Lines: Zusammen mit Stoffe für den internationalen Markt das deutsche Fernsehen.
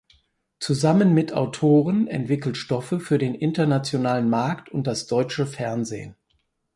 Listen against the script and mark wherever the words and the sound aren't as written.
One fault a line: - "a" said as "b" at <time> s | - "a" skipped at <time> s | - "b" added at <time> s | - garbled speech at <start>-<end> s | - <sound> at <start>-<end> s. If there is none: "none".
- "Autoren entwickelt" added at 1.3 s
- "und" added at 4.7 s